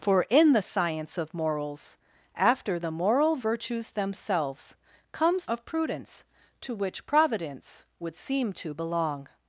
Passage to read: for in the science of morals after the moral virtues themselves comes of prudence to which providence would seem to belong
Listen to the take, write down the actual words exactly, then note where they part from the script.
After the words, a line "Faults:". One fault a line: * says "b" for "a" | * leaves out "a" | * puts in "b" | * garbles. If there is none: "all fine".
for in the science of morals after the moral virtues themselves comes of prudence to which providence would seem to belong
Faults:
all fine